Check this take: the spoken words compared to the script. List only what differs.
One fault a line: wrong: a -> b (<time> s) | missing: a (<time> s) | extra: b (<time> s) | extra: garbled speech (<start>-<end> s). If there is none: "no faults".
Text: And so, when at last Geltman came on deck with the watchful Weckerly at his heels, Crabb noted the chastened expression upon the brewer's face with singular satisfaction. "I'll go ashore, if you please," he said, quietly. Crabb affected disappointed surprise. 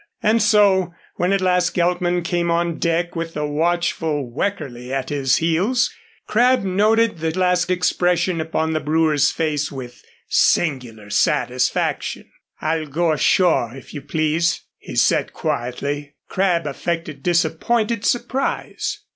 wrong: chastened -> last (7.4 s)